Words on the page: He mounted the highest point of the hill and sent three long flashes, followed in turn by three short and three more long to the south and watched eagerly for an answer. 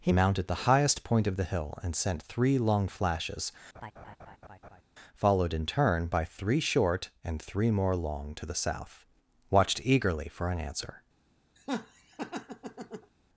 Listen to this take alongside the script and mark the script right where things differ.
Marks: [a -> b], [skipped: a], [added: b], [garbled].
He mounted the highest point of the hill and sent three long flashes, followed in turn by three short and three more long to the south [skipped: and] watched eagerly for an answer.